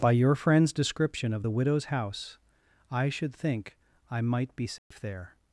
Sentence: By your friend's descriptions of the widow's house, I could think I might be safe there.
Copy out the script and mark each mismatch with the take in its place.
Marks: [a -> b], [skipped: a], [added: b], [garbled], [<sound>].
By your friend's [descriptions -> description] of the widow's house, I [could -> should] think I might be safe [dropout] there.